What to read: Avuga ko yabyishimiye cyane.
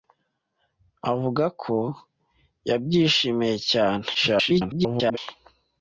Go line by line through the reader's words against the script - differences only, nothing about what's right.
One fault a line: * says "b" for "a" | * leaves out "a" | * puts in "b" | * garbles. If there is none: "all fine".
* garbles